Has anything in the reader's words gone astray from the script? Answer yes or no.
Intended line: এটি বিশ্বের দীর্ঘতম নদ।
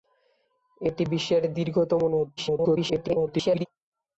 yes